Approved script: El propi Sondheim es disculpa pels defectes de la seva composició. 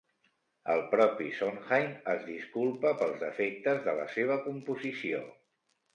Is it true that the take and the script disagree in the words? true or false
false